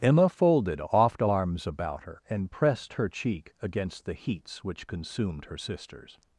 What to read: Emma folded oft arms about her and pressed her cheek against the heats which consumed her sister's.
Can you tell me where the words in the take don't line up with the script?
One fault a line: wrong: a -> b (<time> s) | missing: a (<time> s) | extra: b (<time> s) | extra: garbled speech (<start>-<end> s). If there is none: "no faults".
no faults